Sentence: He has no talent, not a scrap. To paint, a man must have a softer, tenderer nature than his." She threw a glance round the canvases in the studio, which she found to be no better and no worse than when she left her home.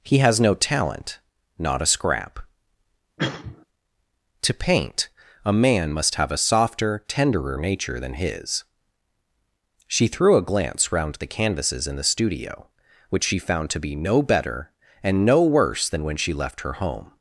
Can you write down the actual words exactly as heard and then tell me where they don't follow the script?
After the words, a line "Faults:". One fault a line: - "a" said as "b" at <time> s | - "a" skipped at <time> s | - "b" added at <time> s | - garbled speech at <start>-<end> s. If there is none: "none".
He has no talent, not a scrap. To paint, a man must have a softer, tenderer nature than his." She threw a glance round the canvases in the studio, which she found to be no better and no worse than when she left her home.
Faults:
none